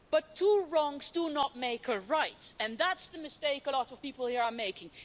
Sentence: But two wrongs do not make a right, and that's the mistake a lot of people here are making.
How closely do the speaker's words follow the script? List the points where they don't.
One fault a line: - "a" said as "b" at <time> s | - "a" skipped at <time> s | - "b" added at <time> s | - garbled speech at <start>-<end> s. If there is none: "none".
none